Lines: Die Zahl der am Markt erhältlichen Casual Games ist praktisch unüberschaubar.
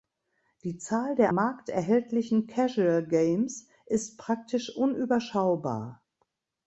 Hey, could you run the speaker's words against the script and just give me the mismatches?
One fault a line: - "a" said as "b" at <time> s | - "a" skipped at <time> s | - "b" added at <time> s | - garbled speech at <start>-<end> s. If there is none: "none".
- "am" skipped at 1.3 s